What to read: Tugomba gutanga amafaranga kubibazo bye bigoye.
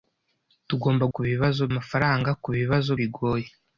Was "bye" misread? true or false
true